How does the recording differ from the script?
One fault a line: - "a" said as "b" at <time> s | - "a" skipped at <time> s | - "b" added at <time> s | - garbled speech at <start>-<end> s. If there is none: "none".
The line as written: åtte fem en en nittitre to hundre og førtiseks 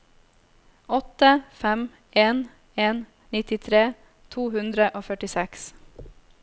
none